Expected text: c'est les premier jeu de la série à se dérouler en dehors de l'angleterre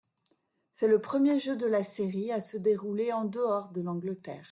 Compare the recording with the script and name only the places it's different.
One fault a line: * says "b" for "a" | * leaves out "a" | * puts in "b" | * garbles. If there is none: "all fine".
* says "le" for "les"